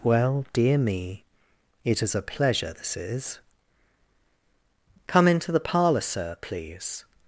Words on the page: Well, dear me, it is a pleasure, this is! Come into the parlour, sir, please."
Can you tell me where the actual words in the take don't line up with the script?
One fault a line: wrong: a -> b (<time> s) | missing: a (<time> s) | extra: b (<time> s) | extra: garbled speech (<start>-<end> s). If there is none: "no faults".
no faults